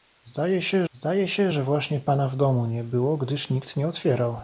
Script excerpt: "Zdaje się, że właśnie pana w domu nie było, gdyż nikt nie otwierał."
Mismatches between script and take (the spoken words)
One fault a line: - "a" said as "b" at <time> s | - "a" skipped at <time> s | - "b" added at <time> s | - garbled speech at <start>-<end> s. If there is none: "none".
- "zdaje się" added at 0.9 s